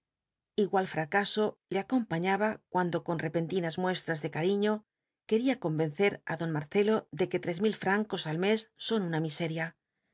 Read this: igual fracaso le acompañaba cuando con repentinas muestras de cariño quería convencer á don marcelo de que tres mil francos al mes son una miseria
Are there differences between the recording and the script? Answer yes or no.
no